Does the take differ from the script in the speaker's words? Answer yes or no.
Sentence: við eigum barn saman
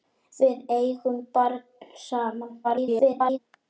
yes